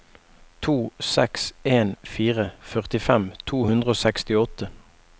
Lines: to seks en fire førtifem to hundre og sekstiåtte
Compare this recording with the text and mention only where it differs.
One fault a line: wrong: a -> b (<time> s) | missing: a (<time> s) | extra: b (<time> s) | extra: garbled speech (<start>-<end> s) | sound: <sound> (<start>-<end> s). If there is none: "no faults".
no faults